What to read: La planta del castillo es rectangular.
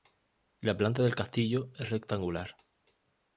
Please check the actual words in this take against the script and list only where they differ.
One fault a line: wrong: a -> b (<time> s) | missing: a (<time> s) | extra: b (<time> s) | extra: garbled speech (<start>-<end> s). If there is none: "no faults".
no faults